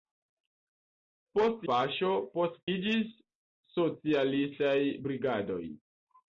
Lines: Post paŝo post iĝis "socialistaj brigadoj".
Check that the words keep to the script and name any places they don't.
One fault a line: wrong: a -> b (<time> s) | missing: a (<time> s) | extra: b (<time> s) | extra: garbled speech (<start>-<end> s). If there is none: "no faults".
no faults